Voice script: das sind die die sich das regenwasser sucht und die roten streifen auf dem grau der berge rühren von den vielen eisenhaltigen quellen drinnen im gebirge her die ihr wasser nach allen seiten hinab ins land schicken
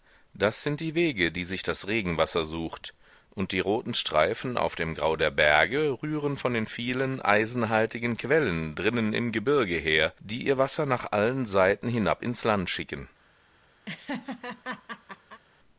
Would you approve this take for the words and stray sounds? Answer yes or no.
no